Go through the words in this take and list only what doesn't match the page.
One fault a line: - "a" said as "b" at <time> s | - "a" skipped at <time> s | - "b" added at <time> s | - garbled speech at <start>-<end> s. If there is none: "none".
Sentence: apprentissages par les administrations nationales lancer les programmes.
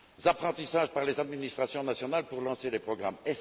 - "pour" added at 2.3 s